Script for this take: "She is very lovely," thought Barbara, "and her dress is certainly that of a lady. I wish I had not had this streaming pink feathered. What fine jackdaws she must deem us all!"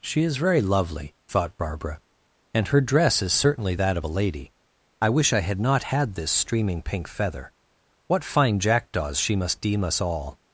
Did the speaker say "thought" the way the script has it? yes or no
yes